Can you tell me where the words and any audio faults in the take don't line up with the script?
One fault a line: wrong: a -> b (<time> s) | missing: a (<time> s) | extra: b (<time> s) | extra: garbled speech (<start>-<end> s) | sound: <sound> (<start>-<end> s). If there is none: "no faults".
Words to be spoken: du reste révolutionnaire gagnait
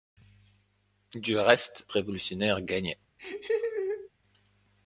sound: laugh (3.2-4.1 s)